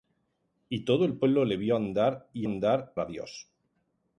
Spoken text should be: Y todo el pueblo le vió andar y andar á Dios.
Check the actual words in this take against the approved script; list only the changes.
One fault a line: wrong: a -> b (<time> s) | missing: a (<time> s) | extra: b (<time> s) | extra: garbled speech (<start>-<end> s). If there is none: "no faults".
no faults